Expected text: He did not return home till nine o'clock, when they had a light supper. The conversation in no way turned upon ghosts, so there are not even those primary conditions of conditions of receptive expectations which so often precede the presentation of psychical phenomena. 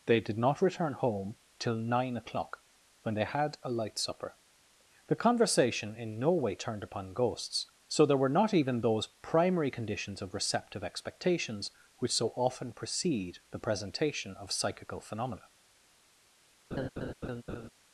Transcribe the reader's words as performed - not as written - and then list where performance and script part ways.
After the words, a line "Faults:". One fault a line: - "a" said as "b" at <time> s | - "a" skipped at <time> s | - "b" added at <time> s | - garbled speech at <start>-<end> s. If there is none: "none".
They did not return home till nine o'clock, when they had a light supper. The conversation in no way turned upon ghosts, so there were not even those primary conditions of receptive expectations which so often precede the presentation of psychical phenomena.
Faults:
- "He" said as "They" at 0.1 s
- "are" said as "were" at 8.2 s
- "conditions of" skipped at 10.3 s